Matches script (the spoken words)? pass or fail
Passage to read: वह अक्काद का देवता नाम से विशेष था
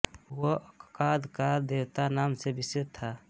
pass